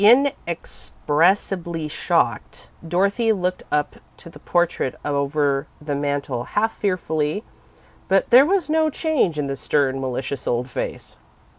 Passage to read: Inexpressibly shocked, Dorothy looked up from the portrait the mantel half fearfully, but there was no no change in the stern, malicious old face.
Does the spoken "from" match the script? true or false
false